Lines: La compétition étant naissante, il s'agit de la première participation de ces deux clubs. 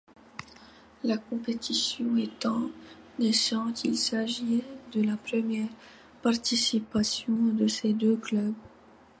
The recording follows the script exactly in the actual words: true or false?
true